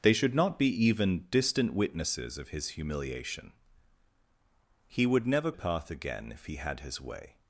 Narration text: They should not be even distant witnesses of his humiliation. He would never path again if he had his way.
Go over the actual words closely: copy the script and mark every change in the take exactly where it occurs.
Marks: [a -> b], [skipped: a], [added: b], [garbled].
They should not be even distant witnesses of his humiliation. He would never path again if he had his way.